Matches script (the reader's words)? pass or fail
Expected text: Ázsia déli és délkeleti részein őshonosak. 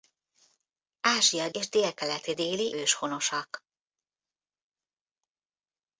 fail